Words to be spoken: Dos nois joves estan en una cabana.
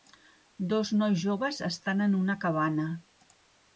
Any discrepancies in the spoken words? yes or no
no